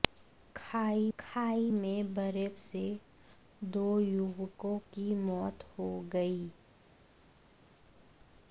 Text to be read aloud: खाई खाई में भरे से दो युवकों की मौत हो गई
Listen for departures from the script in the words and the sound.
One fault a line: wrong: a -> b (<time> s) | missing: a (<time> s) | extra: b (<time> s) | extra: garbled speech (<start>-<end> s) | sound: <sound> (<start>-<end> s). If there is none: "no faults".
no faults